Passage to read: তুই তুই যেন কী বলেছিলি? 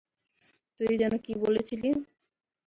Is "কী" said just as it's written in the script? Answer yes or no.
yes